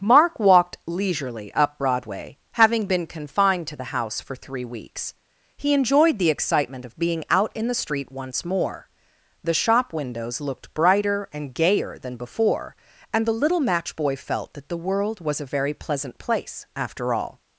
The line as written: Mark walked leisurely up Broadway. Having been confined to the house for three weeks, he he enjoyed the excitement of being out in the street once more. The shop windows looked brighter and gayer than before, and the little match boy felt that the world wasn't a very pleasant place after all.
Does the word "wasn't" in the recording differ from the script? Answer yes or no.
yes